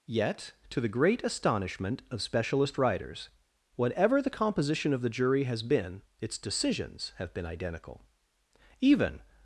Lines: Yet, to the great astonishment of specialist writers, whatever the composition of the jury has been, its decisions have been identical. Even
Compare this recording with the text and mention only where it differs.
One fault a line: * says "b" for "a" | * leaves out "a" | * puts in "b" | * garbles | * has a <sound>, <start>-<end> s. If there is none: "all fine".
all fine